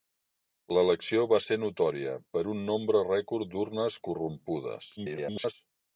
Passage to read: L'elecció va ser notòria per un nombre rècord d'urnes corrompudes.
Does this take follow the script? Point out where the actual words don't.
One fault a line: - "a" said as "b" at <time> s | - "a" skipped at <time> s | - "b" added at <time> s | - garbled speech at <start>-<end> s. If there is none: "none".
- garbled speech at 5.0-5.5 s